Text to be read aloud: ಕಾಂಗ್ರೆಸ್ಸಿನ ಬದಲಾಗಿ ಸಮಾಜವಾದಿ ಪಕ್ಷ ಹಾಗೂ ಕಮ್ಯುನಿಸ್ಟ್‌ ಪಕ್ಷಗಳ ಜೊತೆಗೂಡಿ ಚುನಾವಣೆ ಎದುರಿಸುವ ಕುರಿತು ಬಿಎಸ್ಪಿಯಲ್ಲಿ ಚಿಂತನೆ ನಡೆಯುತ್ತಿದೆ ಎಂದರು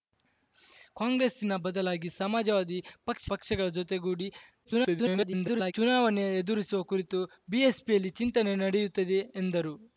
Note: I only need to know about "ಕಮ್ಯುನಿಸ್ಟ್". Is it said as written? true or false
false